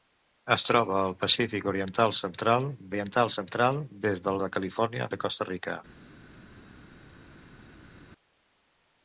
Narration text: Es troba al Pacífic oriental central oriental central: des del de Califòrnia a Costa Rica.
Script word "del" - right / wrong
right